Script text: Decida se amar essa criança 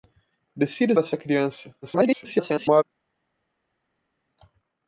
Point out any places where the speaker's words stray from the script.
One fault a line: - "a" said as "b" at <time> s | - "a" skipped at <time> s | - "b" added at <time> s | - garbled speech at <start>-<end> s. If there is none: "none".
- "se amar" skipped at 0.9 s
- garbled speech at 1.8-2.8 s